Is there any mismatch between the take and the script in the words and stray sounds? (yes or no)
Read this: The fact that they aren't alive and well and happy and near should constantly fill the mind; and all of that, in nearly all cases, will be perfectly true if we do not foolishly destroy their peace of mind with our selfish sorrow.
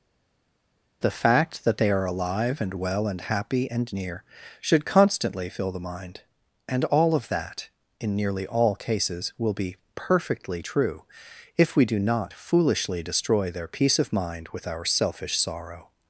yes